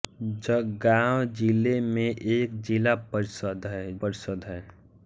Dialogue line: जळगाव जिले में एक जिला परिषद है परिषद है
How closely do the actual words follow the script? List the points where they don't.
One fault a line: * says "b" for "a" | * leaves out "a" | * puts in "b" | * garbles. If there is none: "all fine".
all fine